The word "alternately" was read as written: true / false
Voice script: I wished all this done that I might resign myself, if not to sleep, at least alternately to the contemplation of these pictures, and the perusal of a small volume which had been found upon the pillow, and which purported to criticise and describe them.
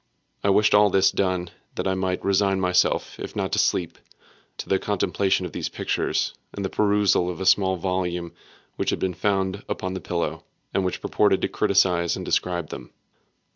false